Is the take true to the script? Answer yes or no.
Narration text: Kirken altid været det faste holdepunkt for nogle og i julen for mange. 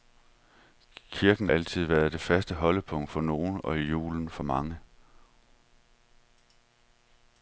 yes